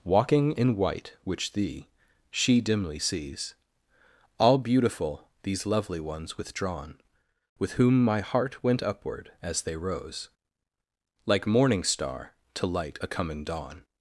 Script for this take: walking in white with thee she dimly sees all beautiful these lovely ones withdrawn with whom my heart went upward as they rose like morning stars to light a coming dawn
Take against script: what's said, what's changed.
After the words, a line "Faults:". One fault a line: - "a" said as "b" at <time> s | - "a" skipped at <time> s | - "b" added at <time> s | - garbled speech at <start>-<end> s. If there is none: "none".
walking in white which thee she dimly sees all beautiful these lovely ones withdrawn with whom my heart went upward as they rose like morning star to light a coming dawn
Faults:
- "with" said as "which" at 1.2 s
- "stars" said as "star" at 11.8 s